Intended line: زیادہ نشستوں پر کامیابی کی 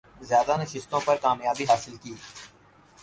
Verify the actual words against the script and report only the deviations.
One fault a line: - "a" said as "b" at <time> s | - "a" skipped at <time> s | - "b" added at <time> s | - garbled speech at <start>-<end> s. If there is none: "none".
- "حاصل" added at 1.6 s